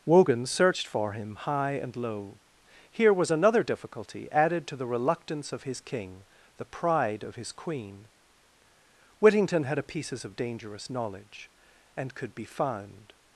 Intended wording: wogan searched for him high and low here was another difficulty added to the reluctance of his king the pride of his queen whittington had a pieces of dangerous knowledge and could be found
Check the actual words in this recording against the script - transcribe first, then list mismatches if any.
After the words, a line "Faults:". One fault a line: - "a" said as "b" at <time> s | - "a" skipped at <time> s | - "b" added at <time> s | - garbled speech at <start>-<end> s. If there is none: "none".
wogan searched for him high and low here was another difficulty added to the reluctance of his king the pride of his queen whittington had a pieces of dangerous knowledge and could be found
Faults:
none